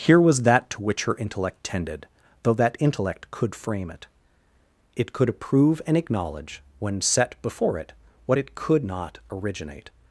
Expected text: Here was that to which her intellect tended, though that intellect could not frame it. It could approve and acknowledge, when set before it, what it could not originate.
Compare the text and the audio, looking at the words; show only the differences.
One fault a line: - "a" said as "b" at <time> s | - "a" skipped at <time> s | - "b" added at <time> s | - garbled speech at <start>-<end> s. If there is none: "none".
- "not" skipped at 3.5 s